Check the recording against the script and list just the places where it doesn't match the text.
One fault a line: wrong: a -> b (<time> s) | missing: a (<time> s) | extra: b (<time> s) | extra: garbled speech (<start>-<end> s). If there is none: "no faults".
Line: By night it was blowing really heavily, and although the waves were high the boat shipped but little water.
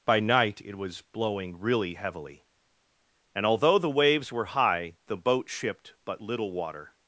no faults